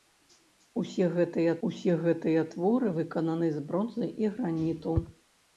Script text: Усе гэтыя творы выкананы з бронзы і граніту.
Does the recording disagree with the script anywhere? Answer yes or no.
yes